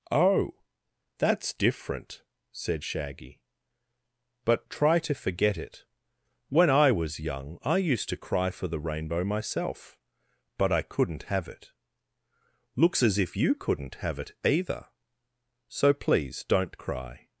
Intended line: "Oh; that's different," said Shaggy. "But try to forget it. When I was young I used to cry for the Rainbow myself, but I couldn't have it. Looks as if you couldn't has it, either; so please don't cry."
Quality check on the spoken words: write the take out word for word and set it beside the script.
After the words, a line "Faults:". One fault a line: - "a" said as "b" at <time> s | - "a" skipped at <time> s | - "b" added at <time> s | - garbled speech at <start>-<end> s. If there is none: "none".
"Oh; that's different," said Shaggy. "But try to forget it. When I was young I used to cry for the Rainbow myself, but I couldn't have it. Looks as if you couldn't have it, either; so please don't cry."
Faults:
- "has" said as "have" at 13.9 s